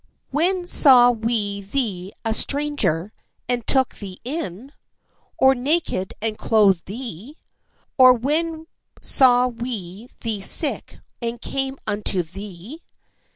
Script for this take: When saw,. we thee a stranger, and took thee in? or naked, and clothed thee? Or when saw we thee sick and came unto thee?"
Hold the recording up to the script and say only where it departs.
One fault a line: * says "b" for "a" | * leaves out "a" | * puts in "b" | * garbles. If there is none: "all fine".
all fine